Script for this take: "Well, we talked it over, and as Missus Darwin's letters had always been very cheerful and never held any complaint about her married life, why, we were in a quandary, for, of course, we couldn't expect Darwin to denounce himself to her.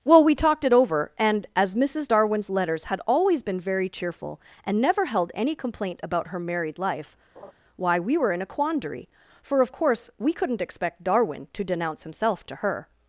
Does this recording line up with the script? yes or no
yes